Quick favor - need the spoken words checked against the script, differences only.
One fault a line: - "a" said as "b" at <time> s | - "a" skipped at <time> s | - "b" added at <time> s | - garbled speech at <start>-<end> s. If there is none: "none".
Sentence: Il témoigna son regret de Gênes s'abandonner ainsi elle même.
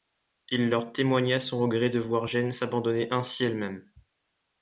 - "leur" added at 0.7 s
- "voir" added at 2.0 s